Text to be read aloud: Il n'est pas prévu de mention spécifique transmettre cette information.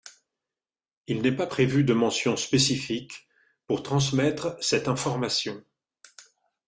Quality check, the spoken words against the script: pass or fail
fail